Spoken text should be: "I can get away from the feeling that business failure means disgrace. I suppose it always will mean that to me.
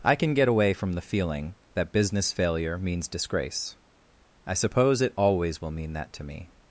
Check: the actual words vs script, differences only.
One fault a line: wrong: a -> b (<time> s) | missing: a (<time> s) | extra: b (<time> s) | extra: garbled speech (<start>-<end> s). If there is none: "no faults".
no faults